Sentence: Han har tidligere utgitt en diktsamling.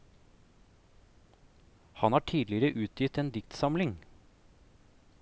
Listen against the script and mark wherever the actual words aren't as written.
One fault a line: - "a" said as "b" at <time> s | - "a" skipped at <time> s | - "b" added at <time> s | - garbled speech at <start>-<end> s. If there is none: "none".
none